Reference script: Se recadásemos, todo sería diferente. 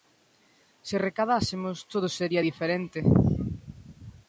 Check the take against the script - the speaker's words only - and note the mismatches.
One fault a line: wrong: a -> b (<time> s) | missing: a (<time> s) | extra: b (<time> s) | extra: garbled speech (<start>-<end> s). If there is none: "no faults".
no faults